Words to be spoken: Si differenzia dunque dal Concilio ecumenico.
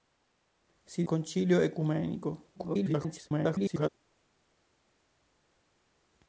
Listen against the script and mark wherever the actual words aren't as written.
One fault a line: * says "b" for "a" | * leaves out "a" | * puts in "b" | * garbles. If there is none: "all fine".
* leaves out "differenzia dunque dal"
* garbles